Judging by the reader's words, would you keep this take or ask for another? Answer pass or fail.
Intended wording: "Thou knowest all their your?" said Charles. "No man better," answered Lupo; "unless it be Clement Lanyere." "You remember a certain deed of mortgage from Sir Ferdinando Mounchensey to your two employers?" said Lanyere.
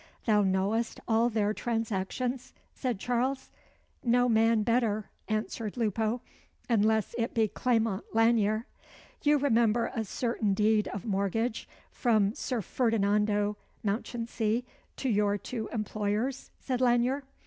fail